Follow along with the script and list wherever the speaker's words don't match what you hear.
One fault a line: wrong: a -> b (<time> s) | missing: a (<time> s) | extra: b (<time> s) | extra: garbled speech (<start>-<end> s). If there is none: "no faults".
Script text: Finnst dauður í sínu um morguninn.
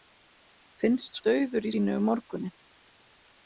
no faults